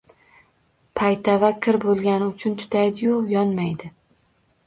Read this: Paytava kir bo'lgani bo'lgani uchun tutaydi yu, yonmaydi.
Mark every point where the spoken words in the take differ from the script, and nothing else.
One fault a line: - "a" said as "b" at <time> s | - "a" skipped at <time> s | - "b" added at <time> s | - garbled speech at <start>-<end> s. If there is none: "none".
- "bo'lgani" skipped at 2.3 s